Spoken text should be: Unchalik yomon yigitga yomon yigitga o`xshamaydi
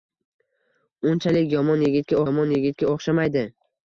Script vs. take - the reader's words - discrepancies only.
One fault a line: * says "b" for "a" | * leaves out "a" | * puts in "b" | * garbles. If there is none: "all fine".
all fine